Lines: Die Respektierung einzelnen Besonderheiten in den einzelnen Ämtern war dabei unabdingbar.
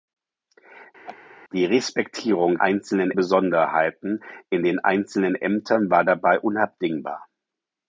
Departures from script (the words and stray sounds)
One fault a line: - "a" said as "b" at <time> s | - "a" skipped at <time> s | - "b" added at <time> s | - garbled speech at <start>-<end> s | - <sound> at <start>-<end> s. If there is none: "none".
- laugh at 1.0-1.2 s